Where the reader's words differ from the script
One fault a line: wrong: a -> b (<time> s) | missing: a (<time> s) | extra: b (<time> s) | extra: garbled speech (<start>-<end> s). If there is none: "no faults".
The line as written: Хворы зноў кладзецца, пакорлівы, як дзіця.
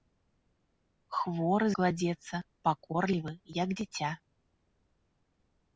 missing: зноў (1.7 s)